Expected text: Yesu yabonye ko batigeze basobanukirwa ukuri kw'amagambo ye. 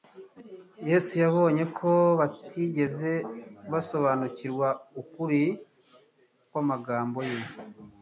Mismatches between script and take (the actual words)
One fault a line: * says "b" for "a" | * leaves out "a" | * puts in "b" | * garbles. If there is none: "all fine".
all fine